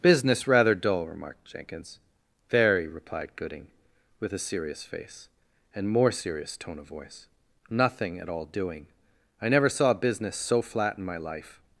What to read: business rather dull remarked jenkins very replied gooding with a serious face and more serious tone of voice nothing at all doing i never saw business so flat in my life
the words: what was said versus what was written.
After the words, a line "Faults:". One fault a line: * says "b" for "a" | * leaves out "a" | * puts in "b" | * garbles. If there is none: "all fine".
business rather dull remarked jenkins very replied gooding with a serious face and more serious tone of voice nothing at all doing i never saw business so flat in my life
Faults:
all fine